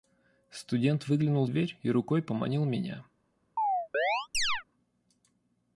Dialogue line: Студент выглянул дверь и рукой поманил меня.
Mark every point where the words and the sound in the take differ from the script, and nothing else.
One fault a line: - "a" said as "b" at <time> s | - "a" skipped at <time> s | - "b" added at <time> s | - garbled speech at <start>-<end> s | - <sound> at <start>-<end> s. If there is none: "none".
- chirp at 3.6-4.6 s